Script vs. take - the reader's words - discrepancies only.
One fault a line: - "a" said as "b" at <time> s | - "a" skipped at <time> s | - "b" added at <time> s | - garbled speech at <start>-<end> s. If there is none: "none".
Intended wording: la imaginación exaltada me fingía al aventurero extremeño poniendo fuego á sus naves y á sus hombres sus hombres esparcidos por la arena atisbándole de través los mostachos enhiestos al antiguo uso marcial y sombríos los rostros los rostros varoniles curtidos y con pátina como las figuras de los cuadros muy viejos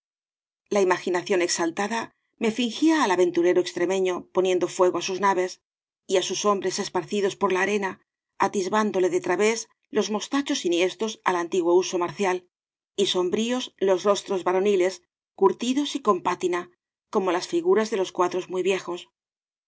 - "sus hombres" skipped at 6.8 s
- "los rostros" skipped at 14.4 s